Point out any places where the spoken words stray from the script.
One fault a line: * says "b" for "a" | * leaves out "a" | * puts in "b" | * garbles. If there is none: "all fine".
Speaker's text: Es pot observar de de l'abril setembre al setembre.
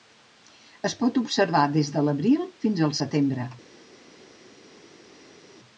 * says "des" for "de"
* says "fins" for "setembre"